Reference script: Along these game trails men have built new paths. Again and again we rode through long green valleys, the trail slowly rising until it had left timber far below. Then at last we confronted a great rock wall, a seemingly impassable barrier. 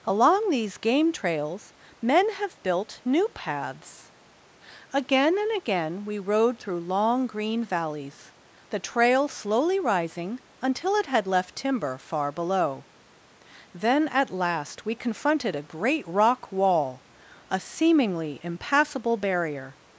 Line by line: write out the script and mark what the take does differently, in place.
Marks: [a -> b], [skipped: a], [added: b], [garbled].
Along these game trails men have built new paths. Again and again we rode through long green valleys, the trail slowly rising until it had left timber far below. Then at last we confronted a great rock wall, a seemingly impassable barrier.